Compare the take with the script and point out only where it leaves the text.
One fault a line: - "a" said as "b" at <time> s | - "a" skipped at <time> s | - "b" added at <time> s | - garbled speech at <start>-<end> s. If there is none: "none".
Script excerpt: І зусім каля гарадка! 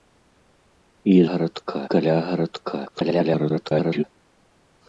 - "зусім" said as "гарадка" at 1.3 s
- garbled speech at 2.9-4.0 s